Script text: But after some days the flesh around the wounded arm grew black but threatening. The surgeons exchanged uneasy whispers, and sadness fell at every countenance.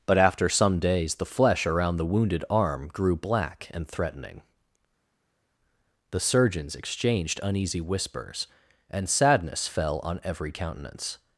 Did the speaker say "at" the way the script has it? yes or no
no